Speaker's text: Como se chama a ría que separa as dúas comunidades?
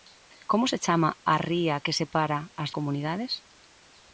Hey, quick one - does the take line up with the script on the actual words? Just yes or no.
no